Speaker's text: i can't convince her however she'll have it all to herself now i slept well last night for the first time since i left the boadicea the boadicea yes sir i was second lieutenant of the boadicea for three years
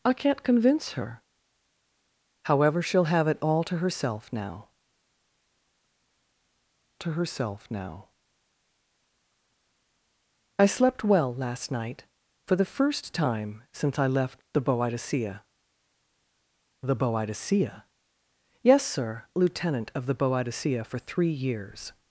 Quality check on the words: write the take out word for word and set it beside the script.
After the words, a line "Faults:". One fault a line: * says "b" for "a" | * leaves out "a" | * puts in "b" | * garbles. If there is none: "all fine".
i can't convince her however she'll have it all to herself now to herself now i slept well last night for the first time since i left the boadicea the boadicea yes sir lieutenant of the boadicea for three years
Faults:
* puts in "to herself now"
* leaves out "i was second"